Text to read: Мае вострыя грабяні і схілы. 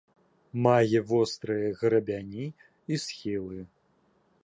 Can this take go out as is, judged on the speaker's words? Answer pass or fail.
pass